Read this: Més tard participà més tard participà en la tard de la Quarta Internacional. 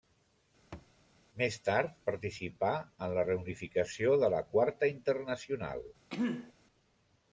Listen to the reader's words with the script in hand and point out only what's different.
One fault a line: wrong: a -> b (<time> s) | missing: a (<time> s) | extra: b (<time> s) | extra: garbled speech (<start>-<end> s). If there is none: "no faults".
missing: més tard participà (2.7 s)
wrong: tard -> reunificació (3.3 s)